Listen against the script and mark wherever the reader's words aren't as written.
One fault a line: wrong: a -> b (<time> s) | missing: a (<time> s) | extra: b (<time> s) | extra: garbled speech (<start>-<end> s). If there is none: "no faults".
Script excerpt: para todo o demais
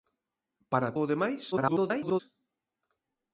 missing: todo (0.9 s)
extra: garbled speech (1.5-2.2 s)